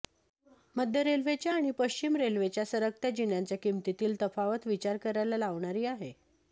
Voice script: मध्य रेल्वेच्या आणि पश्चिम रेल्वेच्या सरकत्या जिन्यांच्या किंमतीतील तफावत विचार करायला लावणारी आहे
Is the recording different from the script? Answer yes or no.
no